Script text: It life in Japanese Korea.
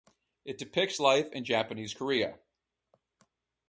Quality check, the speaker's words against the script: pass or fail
fail